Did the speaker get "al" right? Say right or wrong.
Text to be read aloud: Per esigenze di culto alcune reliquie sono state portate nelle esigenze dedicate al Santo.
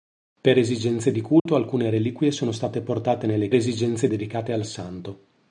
right